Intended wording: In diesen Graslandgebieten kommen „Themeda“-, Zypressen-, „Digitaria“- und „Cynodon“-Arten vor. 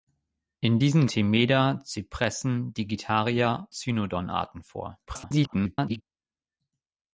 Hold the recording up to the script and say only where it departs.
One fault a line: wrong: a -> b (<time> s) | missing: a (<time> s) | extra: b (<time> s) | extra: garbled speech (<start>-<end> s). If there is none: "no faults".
missing: Graslandgebieten kommen (1.1 s)
missing: und (3.7 s)
extra: garbled speech (5.1-6.0 s)